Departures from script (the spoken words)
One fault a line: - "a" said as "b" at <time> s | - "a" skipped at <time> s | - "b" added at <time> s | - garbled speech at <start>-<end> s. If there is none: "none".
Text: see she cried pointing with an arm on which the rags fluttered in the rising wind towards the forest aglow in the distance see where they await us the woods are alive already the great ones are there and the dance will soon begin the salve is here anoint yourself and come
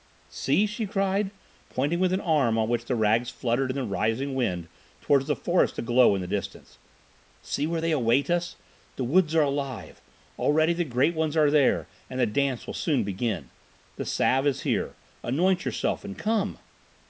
none